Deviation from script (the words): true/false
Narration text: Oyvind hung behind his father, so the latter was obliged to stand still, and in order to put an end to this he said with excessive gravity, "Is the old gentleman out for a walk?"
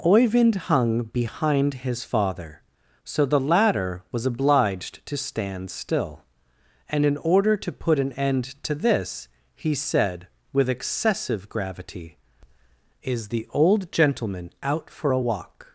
false